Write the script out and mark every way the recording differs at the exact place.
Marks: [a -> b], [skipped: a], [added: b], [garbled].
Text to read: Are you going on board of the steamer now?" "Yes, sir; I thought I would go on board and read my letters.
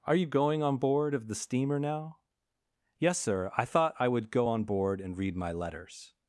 Are you going on board of the steamer now?" "Yes, sir; I thought I would go on board and read my letters.